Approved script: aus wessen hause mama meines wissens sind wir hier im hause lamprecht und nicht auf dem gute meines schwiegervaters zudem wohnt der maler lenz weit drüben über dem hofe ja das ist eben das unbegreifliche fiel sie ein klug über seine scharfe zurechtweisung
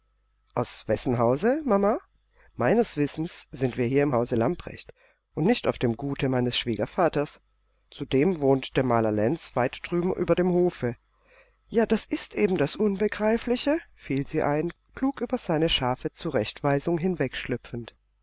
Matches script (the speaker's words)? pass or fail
pass